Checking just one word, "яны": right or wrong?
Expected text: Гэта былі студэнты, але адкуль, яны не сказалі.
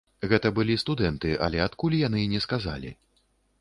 right